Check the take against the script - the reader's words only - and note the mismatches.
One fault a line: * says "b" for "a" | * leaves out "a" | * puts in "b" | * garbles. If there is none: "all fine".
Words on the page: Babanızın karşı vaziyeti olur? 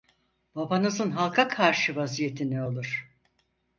* puts in "halka"
* puts in "ne"